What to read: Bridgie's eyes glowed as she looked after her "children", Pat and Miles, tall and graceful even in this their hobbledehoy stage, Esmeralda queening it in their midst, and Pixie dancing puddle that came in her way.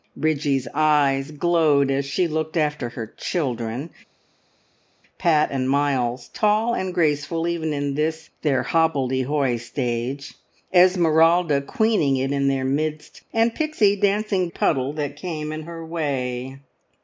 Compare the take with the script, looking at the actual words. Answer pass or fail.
pass